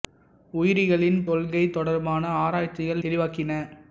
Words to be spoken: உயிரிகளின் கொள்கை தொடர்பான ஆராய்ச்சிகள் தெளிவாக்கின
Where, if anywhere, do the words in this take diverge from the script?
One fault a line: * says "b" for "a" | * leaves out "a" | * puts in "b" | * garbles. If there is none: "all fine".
all fine